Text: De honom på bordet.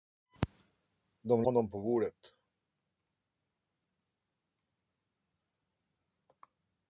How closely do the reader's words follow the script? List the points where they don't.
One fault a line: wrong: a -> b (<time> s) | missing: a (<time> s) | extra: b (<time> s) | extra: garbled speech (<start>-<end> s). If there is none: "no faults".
no faults